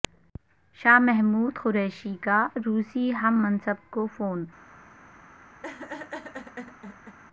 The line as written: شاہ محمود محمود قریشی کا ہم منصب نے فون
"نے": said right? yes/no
no